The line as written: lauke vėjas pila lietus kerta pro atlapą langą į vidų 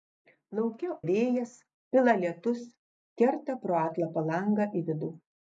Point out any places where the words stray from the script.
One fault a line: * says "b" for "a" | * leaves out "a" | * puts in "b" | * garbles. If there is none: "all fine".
all fine